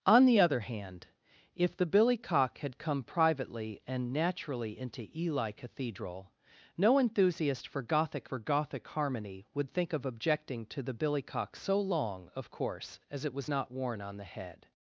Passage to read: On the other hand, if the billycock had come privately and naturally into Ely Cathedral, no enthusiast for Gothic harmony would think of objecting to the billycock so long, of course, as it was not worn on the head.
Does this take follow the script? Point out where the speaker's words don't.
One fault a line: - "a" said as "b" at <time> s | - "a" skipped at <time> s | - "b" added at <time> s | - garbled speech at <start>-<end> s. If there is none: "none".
- "for Gothic" added at 8.2 s